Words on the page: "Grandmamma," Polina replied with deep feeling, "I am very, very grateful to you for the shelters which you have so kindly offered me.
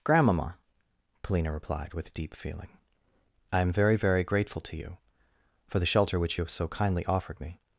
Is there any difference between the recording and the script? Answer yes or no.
yes